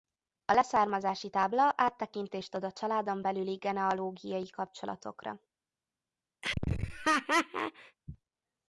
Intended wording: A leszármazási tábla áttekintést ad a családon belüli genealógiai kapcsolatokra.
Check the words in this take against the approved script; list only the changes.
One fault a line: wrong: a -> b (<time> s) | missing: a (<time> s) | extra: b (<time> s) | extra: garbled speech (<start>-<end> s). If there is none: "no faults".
no faults